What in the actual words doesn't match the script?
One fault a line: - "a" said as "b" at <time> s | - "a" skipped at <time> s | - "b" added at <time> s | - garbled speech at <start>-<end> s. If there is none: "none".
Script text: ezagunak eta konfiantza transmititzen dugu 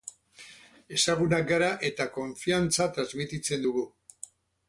- "gara" added at 1.5 s